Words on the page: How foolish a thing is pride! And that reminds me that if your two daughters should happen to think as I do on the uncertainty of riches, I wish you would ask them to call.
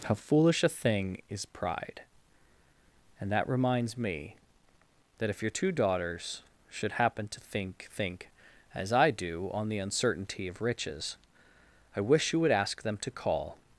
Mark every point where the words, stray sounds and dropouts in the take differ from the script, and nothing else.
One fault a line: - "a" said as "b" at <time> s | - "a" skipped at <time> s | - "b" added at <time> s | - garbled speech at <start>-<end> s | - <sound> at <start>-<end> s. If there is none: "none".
- "think" added at 8.0 s